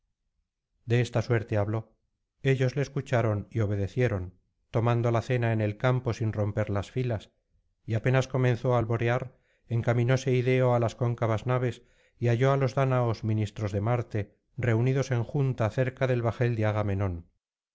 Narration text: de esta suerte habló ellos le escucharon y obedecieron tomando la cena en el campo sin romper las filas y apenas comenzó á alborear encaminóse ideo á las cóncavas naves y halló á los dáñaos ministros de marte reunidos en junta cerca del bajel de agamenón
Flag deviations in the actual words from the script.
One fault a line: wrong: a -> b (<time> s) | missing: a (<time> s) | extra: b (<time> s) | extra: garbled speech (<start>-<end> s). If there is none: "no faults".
no faults